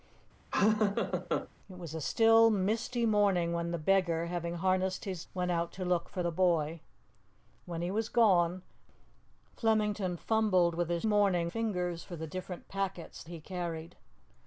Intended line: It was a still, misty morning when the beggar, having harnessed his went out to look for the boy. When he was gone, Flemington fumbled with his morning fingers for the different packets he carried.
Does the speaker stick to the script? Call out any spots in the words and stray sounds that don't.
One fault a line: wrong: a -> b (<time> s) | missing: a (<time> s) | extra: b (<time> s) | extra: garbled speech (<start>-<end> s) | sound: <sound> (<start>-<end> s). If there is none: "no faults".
sound: laugh (0.5-1.5 s)